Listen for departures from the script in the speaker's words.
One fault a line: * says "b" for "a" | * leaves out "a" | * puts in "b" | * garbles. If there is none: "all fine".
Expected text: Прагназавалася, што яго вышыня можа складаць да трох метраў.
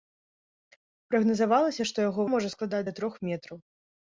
* leaves out "вышыня"